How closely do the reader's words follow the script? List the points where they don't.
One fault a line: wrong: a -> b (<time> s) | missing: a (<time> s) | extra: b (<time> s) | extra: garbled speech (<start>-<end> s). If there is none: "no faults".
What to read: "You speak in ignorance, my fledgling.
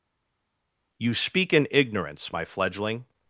no faults